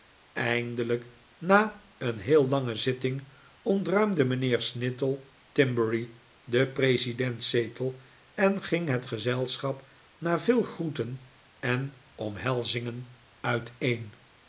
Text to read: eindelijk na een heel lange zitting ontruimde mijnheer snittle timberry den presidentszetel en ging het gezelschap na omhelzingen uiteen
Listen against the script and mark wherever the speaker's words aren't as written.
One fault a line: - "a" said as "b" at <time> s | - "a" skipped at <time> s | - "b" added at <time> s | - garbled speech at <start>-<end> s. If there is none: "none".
- "veel groeten en" added at 10.4 s